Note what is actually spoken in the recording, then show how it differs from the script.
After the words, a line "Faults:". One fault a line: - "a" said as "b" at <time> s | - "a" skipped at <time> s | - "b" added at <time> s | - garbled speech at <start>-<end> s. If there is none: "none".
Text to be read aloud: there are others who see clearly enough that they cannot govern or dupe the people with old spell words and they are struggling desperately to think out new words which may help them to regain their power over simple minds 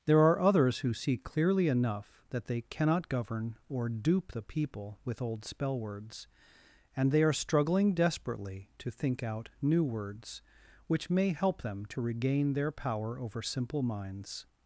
there are others who see clearly enough that they cannot govern or dupe the people with old spell words and they are struggling desperately to think out new words which may help them to regain their power over simple minds
Faults:
none